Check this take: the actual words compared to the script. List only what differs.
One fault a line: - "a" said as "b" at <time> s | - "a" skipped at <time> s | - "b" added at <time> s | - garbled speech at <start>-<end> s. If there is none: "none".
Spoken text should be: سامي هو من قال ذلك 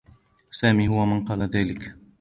none